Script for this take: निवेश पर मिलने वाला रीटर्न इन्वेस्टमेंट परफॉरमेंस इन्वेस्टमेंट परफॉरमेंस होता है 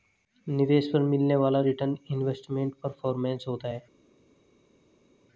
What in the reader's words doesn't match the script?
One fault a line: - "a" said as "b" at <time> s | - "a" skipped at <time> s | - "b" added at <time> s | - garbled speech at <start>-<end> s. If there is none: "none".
- "इन्वेस्टमेंट परफॉरमेंस" skipped at 3.4 s